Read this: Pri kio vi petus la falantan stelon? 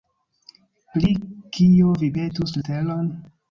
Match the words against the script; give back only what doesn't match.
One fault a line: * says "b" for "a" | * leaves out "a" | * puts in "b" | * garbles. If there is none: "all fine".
* leaves out "la falantan"